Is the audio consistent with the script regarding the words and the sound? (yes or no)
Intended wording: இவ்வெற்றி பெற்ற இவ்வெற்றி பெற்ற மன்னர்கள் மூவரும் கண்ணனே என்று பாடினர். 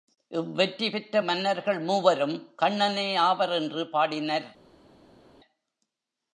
no